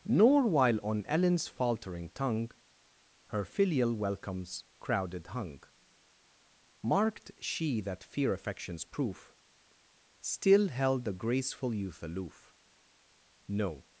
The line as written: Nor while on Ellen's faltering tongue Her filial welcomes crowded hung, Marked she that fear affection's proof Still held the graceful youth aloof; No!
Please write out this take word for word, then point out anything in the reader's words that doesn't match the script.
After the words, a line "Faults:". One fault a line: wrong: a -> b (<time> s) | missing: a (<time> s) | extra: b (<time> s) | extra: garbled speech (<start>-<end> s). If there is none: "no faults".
Nor while on Ellen's faltering tongue Her filial welcomes crowded hung, Marked she that fear affection's proof Still held the graceful youth aloof; No!
Faults:
no faults